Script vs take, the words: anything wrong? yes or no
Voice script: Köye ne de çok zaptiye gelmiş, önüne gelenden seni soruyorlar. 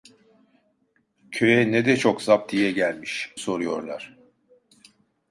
yes